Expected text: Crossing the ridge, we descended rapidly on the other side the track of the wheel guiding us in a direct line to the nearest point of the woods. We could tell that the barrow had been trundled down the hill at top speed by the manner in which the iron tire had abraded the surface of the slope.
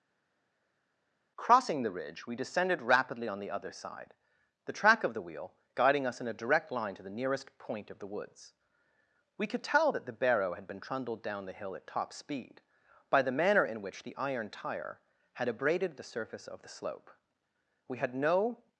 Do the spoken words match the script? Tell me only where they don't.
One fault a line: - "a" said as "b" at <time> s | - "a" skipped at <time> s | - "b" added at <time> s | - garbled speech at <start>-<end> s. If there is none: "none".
- "We had no" added at 17.9 s